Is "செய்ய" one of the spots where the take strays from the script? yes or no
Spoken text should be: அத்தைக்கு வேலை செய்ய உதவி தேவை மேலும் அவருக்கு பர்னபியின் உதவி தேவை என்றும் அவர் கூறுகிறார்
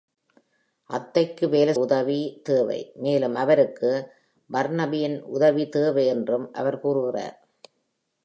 yes